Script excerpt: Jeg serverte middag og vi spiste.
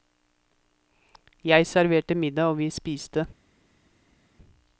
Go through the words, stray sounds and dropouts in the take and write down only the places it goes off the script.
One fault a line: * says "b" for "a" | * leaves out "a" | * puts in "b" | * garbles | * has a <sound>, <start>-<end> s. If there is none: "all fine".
all fine